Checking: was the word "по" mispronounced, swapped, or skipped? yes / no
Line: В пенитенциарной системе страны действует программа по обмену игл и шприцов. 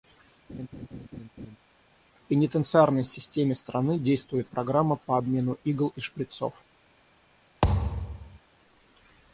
no